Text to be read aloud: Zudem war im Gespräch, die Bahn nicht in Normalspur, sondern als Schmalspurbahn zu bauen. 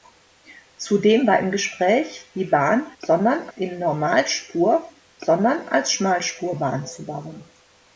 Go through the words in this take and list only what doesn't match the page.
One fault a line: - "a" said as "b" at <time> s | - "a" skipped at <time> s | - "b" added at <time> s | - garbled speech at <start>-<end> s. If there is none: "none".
- "nicht" said as "sondern" at 3.0 s